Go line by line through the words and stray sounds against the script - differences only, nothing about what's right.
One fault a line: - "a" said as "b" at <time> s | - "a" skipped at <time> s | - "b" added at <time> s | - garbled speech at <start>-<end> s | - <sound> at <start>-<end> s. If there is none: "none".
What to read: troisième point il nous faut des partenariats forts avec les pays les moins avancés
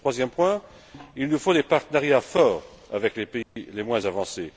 - dropout at 3.4-3.6 s